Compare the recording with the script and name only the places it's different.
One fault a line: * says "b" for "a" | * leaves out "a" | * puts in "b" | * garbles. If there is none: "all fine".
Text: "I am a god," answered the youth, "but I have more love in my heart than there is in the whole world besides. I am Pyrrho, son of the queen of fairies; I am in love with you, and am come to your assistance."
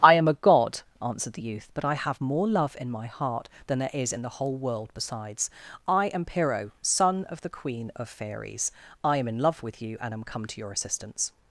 all fine